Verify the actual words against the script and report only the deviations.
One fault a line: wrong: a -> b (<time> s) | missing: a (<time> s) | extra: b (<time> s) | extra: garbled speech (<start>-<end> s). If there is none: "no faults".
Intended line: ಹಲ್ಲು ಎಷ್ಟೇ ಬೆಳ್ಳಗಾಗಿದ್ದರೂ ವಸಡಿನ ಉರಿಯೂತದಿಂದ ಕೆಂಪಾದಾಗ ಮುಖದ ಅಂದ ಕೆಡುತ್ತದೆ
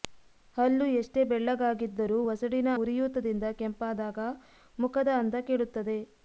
no faults